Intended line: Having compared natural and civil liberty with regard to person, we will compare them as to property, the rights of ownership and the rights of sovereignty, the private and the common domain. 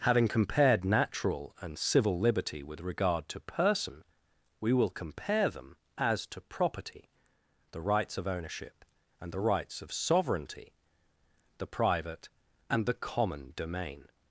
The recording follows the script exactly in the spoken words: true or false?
true